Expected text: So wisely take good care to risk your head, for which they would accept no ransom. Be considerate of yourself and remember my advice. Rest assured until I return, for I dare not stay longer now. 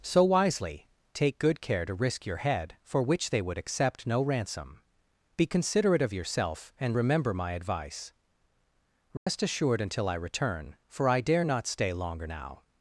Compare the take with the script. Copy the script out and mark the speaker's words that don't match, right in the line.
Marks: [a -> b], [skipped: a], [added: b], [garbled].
So wisely take good care to risk your head, for which they would accept no ransom. Be considerate of yourself and remember my advice. Rest assured until I return, for I dare not stay longer now.